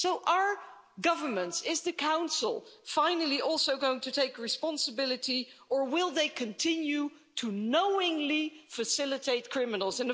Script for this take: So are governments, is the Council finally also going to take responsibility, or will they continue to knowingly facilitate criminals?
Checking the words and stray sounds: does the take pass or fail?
pass